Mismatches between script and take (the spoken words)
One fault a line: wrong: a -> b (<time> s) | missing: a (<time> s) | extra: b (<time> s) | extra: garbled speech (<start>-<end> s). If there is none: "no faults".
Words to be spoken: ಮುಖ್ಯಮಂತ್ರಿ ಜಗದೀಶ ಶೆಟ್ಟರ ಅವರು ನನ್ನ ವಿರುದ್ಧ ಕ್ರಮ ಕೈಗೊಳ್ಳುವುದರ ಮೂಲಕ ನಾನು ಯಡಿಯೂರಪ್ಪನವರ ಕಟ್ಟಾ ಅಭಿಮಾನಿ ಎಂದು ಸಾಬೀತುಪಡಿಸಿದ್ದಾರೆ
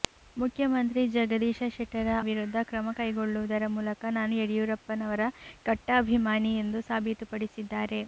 missing: ಅವರು ನನ್ನ (2.1 s)